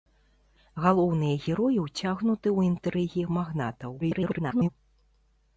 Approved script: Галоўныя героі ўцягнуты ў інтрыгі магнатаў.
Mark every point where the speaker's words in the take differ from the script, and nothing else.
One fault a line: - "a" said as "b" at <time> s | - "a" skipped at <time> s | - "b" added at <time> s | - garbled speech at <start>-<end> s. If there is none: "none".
- garbled speech at 4.0-4.7 s